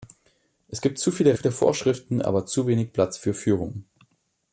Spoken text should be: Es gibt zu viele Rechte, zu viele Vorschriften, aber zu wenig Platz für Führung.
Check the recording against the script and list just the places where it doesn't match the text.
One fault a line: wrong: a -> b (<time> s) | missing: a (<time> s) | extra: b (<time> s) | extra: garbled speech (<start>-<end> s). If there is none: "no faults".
missing: Rechte zu (1.4 s)